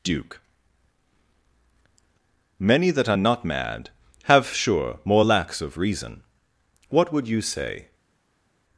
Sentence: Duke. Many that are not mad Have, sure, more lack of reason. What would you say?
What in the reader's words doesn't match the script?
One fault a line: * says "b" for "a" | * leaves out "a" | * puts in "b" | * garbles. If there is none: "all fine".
* says "lacks" for "lack"